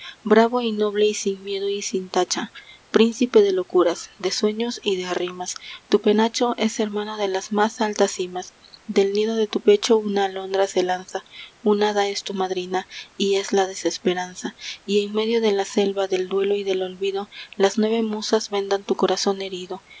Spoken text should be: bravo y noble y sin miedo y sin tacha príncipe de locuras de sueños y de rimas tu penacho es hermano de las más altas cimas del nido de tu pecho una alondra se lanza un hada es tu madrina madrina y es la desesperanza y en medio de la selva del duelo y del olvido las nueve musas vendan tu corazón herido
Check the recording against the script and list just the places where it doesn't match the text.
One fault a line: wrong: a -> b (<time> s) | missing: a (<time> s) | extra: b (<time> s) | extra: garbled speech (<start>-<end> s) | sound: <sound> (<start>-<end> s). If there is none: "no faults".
missing: madrina (12.9 s)